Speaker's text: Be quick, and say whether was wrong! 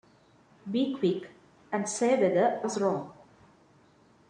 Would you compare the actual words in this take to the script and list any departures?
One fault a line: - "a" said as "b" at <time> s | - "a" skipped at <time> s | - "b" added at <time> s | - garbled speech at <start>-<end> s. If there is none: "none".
none